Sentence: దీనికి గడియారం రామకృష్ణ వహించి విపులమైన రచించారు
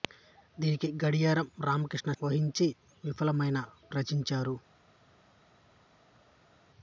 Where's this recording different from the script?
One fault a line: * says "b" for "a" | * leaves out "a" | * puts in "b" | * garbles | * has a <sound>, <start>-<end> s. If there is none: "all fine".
all fine